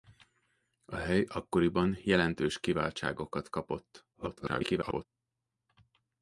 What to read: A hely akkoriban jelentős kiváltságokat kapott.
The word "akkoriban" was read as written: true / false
true